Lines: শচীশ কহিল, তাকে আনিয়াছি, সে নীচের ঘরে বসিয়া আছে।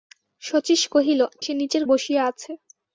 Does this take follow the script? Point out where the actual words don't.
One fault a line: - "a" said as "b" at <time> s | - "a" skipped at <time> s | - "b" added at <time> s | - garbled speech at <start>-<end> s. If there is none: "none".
- "তাকে আনিয়াছি" skipped at 1.2 s
- "ঘরে" skipped at 1.8 s